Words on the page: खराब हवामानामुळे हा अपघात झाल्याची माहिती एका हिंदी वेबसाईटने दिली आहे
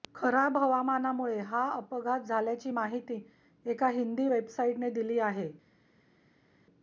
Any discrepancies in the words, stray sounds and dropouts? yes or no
no